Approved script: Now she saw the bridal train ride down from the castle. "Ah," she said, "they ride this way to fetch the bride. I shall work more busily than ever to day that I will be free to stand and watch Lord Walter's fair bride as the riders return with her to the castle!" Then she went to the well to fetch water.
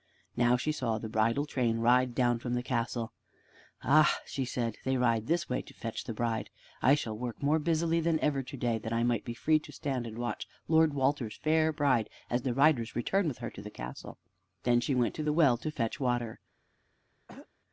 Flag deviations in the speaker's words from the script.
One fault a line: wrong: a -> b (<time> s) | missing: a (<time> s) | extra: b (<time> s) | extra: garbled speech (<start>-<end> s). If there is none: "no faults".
wrong: will -> may (9.0 s)